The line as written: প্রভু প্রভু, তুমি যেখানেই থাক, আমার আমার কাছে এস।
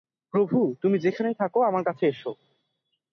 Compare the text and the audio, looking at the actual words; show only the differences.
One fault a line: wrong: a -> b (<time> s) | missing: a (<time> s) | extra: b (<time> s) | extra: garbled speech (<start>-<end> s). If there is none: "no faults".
missing: প্রভু (0.6 s)
missing: আমার (1.8 s)